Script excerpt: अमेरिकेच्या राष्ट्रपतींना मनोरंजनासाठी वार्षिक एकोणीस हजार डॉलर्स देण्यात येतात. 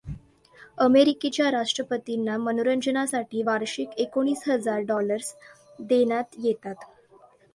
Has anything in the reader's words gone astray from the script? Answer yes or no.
no